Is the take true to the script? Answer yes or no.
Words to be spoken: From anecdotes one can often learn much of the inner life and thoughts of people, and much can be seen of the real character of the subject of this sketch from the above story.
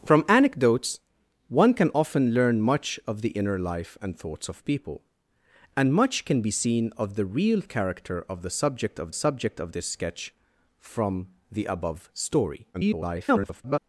no